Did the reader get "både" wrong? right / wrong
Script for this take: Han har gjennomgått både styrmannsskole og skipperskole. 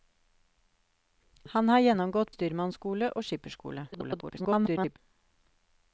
wrong